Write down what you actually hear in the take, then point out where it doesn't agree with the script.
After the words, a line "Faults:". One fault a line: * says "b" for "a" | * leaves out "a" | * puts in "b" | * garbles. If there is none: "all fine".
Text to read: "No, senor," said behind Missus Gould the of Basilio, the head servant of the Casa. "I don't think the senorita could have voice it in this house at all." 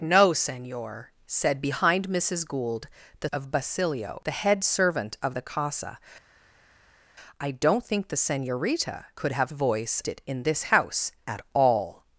"No, senor," said behind Missus Gould the of Basilio, the head servant of the Casa. "I don't think the senorita could have voice it in this house at all."
Faults:
all fine